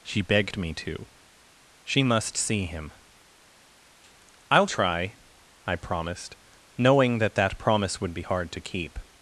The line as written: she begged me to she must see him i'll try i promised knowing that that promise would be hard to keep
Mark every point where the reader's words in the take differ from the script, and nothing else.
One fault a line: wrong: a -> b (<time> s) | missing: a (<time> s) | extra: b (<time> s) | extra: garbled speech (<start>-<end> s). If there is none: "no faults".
no faults